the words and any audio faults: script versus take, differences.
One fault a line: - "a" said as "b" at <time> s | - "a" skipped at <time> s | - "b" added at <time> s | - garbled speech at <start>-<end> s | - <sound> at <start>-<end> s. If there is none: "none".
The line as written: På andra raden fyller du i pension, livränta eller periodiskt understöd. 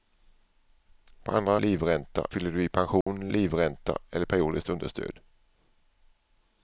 - "raden" said as "livränta" at 1.6 s
- dropout at 3.0-3.1 s